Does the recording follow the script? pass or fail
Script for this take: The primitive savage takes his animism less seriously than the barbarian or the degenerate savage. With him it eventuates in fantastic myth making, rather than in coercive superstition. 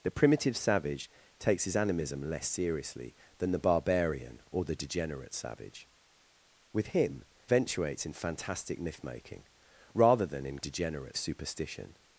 fail